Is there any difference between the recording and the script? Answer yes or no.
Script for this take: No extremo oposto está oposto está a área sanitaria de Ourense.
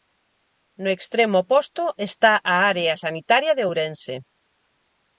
yes